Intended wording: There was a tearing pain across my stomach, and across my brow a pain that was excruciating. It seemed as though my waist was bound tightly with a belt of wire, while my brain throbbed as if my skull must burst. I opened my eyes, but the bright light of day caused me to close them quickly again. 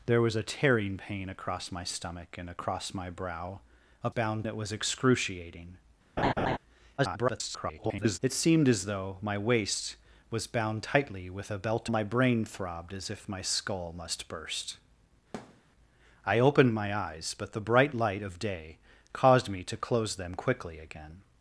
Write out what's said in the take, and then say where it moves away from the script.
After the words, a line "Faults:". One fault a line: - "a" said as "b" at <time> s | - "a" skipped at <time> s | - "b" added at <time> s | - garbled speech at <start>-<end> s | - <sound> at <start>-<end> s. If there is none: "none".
There was a tearing pain across my stomach, and across my brow a bound that was excruciating. [garbled] It seemed as though my waist was bound tightly with a belt my brain throbbed as if my skull must burst. I opened my eyes, but the bright light of day caused me to close them quickly again.
Faults:
- "pain" said as "bound" at 4.1 s
- laugh at 6.2-6.6 s
- garbled speech at 7.0-8.2 s
- "of wire while" skipped at 11.9 s
- thud at 15.3-15.6 s